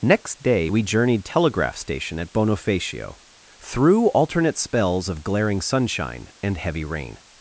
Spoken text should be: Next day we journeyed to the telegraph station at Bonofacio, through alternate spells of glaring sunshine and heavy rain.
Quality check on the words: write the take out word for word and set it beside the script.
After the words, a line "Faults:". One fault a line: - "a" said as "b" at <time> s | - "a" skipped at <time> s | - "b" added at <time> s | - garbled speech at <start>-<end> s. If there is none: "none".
Next day we journeyed telegraph station at Bonofacio, through alternate spells of glaring sunshine and heavy rain.
Faults:
- "to the" skipped at 1.2 s